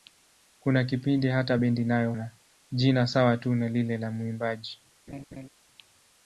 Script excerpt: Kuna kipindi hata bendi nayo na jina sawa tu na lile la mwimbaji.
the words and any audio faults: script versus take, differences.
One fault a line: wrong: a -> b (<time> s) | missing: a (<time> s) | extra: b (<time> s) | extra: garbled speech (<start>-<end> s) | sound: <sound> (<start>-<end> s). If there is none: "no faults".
sound: laugh (5.1-5.5 s)